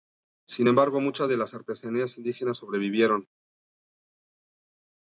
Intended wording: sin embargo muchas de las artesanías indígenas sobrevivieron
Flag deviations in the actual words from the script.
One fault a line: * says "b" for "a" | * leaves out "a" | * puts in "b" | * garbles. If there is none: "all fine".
all fine